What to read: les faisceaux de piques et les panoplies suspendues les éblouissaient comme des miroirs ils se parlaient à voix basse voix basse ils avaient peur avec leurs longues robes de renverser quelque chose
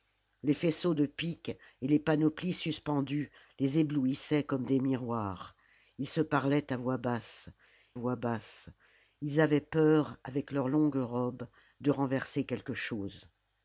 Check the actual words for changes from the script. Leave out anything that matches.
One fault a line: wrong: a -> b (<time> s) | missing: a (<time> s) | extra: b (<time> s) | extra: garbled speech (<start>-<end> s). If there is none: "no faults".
no faults